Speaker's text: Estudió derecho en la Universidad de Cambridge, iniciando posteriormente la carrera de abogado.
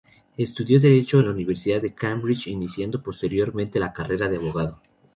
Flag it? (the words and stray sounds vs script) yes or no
no